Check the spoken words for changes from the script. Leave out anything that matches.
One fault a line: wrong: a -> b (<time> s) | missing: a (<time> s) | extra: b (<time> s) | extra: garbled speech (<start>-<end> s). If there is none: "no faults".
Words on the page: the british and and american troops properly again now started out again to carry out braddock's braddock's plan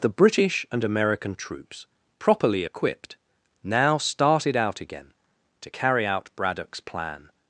missing: and (0.8 s)
wrong: again -> equipped (2.6 s)
missing: braddock's (6.8 s)